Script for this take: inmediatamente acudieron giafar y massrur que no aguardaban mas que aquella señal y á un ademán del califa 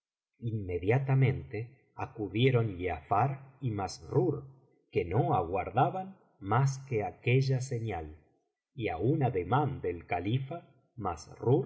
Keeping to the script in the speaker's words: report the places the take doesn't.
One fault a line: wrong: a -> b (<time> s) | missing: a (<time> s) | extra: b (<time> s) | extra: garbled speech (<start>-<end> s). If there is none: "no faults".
no faults